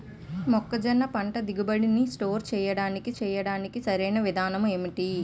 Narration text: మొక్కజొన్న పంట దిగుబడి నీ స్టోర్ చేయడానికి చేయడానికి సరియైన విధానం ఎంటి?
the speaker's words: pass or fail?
pass